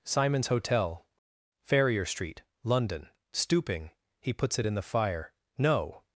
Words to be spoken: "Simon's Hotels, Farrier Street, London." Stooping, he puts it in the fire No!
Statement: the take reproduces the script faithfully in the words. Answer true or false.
false